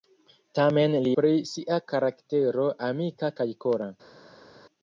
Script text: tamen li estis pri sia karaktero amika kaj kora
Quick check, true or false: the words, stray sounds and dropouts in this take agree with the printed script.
false